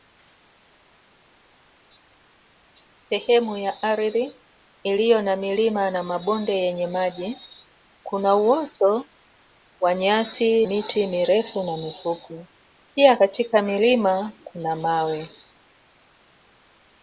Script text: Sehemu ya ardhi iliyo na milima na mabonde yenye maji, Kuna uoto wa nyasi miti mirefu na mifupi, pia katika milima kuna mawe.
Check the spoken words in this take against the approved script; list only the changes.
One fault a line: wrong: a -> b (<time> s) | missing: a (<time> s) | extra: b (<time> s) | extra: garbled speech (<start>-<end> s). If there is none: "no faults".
no faults